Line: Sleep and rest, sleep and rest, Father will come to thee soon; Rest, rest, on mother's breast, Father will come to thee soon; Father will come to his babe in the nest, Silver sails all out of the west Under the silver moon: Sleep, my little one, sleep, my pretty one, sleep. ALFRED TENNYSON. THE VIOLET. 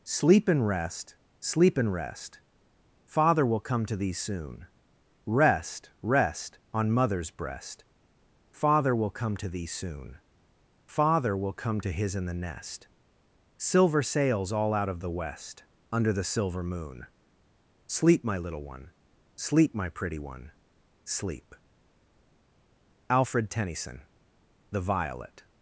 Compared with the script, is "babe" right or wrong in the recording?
wrong